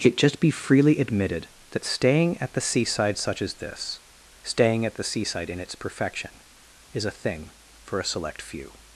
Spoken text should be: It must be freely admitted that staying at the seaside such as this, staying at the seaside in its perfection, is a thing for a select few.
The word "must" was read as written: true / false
false